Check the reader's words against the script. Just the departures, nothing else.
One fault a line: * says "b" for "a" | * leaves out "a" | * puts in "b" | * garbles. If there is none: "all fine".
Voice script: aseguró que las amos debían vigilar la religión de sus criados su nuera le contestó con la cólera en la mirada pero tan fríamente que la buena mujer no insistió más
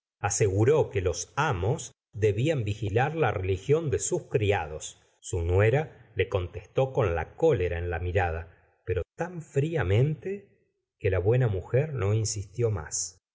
* says "los" for "las"